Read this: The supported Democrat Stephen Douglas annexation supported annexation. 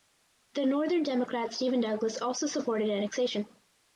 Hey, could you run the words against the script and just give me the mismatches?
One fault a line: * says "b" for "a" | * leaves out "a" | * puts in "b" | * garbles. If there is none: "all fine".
* says "northern" for "supported"
* says "also" for "annexation"